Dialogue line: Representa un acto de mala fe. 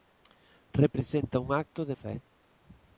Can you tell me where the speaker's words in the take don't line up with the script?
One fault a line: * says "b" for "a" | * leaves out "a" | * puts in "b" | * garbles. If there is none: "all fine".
* leaves out "mala"